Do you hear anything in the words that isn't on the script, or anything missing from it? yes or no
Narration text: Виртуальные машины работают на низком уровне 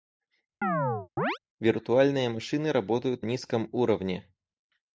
yes